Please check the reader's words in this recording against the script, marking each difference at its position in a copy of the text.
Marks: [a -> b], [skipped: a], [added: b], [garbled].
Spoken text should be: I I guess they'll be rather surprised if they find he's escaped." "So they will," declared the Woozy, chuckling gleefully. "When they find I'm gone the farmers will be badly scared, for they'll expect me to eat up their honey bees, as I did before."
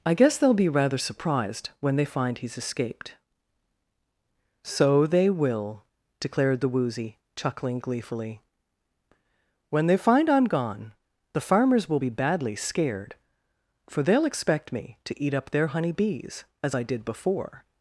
I [skipped: I] guess they'll be rather surprised [if -> when] they find he's escaped." "So they will," declared the Woozy, chuckling gleefully. "When they find I'm gone the farmers will be badly scared, for they'll expect me to eat up their honey bees, as I did before."